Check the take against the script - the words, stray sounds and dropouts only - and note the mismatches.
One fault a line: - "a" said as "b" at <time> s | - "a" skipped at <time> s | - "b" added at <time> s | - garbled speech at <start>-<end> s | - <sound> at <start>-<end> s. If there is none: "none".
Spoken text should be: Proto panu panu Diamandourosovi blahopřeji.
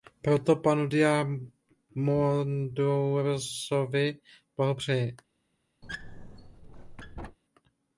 - "panu" skipped at 0.9 s
- squeak at 5.8-7.4 s